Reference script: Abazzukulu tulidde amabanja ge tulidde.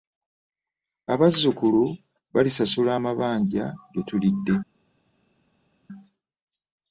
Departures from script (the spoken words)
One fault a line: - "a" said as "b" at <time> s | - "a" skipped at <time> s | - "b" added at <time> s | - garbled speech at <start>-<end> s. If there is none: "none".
- "tulidde" said as "balisasula" at 2.3 s